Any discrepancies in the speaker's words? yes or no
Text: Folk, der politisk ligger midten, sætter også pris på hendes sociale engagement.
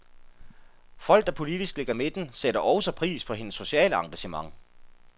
no